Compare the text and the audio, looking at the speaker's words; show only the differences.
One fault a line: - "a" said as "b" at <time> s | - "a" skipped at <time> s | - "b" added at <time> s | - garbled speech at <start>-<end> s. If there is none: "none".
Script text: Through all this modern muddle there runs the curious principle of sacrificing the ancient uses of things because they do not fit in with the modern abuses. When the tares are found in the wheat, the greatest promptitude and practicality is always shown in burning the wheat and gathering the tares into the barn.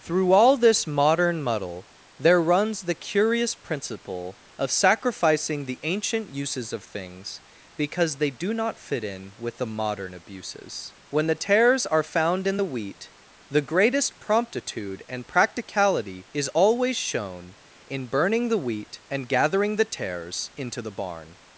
none